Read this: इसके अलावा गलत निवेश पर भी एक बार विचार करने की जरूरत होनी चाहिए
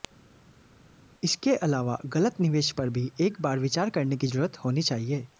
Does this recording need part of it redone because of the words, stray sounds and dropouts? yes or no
no